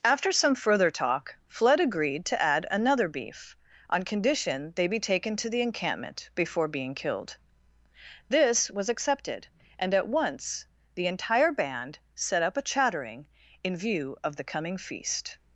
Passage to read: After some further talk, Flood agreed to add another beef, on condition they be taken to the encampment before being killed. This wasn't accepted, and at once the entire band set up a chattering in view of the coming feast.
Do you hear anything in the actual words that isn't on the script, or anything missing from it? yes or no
yes